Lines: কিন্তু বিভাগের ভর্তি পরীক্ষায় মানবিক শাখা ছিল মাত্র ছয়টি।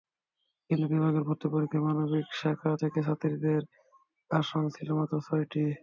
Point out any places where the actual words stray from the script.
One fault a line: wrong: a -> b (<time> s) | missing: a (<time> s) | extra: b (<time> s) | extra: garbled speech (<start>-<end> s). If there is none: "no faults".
extra: থেকে ছাত্রীদের আসন (2.8 s)